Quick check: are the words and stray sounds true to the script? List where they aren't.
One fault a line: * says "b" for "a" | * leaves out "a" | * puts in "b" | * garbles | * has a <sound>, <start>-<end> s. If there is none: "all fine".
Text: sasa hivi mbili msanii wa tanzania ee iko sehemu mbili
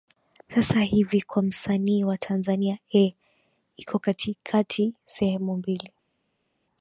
* says "kwa" for "mbili"
* puts in "katikati"